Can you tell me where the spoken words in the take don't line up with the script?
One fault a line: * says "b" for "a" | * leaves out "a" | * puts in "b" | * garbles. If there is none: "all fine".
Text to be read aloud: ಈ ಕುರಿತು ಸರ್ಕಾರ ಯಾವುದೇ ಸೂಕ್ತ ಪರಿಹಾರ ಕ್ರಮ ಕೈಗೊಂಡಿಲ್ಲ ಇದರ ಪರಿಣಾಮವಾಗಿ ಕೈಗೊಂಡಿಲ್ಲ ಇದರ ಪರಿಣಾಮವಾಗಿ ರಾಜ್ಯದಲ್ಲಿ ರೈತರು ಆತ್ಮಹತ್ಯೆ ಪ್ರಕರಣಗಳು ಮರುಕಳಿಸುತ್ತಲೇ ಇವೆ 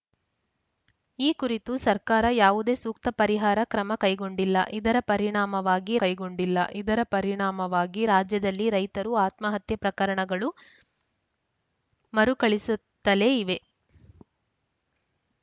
all fine